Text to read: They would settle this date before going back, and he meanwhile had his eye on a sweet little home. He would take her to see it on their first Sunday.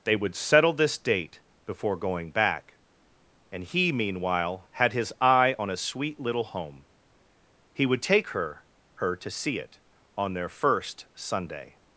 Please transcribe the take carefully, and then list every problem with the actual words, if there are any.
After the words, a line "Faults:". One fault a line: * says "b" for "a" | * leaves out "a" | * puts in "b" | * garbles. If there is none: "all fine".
They would settle this date before going back, and he meanwhile had his eye on a sweet little home. He would take her her to see it on their first Sunday.
Faults:
* puts in "her"